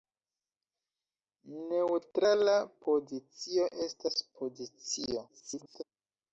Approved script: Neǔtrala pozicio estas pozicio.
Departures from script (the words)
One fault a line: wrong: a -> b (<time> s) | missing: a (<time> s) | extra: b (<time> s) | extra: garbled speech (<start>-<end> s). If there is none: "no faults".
extra: garbled speech (5.3-5.8 s)